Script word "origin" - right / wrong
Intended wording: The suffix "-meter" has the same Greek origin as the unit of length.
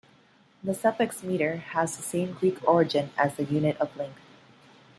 right